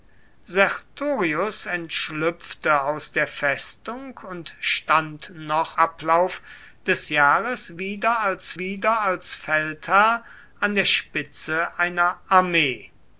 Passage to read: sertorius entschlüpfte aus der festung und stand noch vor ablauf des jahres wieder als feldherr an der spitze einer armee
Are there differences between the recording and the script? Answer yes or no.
yes